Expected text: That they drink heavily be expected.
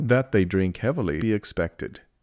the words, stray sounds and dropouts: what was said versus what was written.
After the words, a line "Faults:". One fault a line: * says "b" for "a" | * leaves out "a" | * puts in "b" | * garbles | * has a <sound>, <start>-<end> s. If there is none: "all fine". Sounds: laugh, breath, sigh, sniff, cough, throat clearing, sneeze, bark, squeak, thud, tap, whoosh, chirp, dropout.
That they drink heavily be expected.
Faults:
all fine